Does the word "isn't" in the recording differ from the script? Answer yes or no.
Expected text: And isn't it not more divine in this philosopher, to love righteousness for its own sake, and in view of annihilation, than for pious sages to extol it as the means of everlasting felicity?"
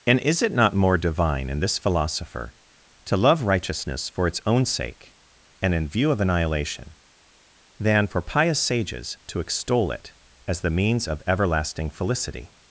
yes